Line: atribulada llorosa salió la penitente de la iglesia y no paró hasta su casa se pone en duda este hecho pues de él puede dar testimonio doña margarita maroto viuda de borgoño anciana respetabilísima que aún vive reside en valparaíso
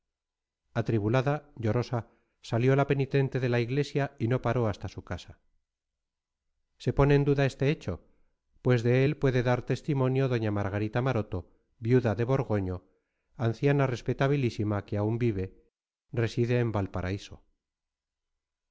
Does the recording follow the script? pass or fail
pass